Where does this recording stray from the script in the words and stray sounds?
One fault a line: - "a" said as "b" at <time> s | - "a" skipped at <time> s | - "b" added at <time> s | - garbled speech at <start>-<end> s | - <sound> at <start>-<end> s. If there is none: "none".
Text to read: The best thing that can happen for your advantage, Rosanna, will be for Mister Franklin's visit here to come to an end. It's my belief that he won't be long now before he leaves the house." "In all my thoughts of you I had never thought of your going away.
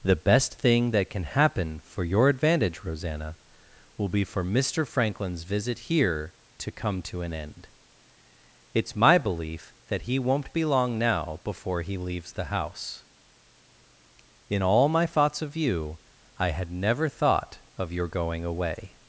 none